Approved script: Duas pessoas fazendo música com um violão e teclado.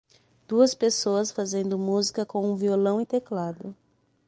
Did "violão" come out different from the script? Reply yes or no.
no